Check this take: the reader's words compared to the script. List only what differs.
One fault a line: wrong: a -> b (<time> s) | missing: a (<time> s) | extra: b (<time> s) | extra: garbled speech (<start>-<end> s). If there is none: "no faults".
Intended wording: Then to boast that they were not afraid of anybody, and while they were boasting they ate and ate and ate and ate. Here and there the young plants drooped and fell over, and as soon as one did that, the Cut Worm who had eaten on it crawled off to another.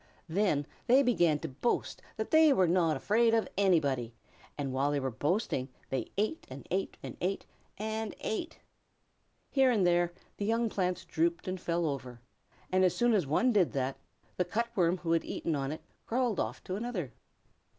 extra: they began (0.9 s)